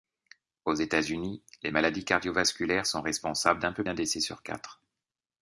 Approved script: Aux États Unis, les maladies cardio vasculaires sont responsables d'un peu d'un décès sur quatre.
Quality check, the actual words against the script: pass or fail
pass